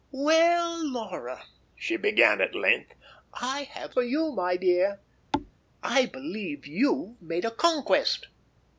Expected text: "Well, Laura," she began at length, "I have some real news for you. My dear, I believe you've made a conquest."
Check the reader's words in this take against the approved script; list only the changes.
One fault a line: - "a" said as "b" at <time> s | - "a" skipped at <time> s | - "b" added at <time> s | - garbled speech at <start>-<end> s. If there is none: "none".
- "some real news" skipped at 4.0 s